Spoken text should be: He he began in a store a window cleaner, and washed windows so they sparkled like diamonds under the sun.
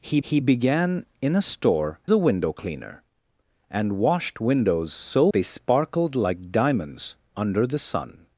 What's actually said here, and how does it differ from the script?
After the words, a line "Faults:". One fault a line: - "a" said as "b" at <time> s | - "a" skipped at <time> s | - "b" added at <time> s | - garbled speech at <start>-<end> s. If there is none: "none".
He he began in a store a window cleaner, and washed windows so they sparkled like diamonds under the sun.
Faults:
none